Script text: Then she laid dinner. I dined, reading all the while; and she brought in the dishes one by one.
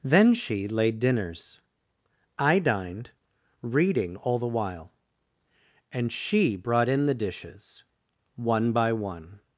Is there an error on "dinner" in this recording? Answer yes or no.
yes